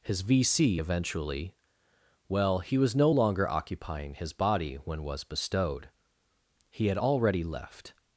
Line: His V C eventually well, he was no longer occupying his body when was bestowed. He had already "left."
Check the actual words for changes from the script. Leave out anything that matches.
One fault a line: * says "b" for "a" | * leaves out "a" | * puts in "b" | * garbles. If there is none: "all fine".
all fine